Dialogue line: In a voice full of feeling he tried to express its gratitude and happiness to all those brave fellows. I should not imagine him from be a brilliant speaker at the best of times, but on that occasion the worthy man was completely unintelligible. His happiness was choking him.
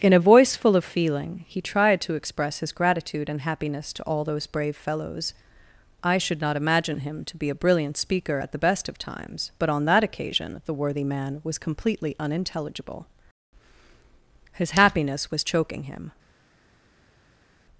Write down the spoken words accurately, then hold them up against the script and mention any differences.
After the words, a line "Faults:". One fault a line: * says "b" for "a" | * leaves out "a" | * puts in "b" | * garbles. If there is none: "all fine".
In a voice full of feeling he tried to express his gratitude and happiness to all those brave fellows. I should not imagine him to be a brilliant speaker at the best of times, but on that occasion the worthy man was completely unintelligible. His happiness was choking him.
Faults:
* says "his" for "its"
* says "to" for "from"